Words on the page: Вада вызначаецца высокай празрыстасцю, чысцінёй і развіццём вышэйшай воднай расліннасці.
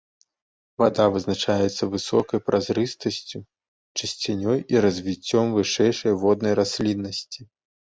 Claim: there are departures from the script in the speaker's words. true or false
false